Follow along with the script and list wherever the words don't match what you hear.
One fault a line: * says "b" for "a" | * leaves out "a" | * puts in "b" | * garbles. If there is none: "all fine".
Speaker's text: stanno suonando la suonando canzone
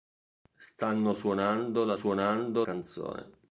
all fine